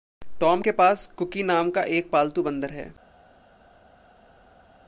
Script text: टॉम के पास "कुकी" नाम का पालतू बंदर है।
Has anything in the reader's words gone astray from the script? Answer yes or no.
yes